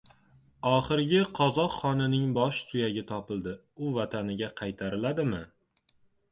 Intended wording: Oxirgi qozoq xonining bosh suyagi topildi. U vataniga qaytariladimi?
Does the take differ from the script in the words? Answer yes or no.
no